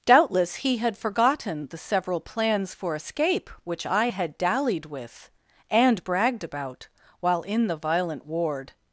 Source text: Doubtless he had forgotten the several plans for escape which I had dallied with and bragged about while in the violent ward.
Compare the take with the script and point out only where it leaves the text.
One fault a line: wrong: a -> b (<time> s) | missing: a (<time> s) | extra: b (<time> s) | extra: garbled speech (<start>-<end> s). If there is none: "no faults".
no faults